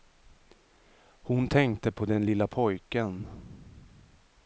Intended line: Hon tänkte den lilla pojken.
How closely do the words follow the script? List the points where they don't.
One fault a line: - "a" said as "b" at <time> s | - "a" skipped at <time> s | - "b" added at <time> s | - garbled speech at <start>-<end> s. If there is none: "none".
- "på" added at 1.9 s